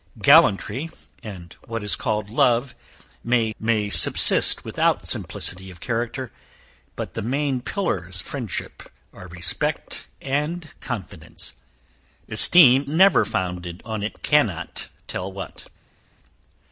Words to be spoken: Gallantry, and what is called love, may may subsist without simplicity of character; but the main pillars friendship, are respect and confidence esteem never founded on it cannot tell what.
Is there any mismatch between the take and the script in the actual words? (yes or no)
no